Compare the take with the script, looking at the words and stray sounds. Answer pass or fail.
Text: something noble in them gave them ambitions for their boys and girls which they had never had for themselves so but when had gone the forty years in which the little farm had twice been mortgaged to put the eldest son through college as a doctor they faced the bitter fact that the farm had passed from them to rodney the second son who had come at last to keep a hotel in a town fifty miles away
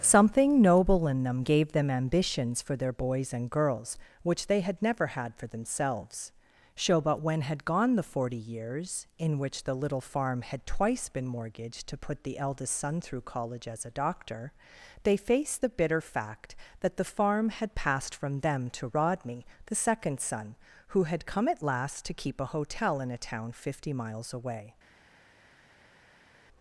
pass